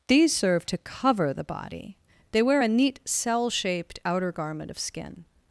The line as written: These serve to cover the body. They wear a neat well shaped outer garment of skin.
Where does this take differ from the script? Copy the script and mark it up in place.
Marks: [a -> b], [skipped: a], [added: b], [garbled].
These serve to cover the body. They wear a neat [well -> cell] shaped outer garment of skin.